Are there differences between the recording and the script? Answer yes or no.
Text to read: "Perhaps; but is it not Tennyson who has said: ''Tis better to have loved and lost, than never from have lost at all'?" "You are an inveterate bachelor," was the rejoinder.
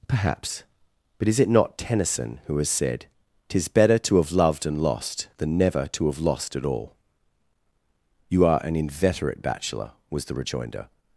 yes